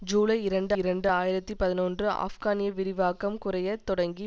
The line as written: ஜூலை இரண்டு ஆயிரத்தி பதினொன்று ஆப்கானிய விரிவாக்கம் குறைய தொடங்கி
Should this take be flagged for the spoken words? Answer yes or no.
yes